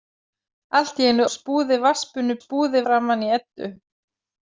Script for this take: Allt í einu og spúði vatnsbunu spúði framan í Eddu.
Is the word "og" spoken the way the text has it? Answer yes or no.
yes